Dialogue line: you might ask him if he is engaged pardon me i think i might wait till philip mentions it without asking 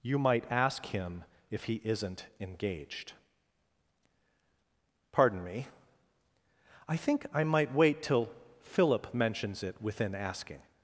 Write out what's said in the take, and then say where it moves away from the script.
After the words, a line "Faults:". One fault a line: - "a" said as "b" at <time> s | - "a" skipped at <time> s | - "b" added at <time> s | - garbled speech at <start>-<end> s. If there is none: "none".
you might ask him if he isn't engaged pardon me i think i might wait till philip mentions it within asking
Faults:
- "is" said as "isn't" at 1.8 s
- "without" said as "within" at 9.8 s